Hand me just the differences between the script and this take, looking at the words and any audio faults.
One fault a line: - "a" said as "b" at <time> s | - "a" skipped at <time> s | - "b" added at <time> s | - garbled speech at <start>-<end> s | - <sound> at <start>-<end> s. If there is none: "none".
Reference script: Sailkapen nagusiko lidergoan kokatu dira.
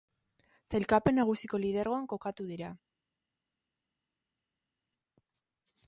none